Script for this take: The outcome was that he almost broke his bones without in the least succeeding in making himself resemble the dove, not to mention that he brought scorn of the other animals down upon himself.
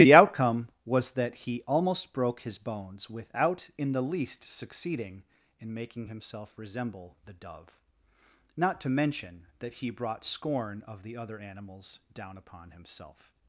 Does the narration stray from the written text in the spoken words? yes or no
no